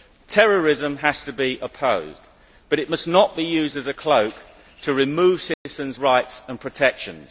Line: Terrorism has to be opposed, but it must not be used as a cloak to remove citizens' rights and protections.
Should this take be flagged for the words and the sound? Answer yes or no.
yes